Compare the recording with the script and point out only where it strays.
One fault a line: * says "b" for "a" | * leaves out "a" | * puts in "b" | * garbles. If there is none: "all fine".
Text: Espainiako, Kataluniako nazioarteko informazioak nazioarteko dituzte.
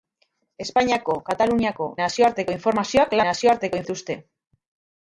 all fine